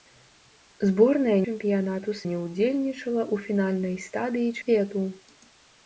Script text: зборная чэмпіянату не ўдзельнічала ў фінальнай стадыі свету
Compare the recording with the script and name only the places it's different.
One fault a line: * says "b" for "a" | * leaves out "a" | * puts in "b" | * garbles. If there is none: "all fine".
all fine